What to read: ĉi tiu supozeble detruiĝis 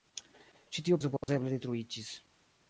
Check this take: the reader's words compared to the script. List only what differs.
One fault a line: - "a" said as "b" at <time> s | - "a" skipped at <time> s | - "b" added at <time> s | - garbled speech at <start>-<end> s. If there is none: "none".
none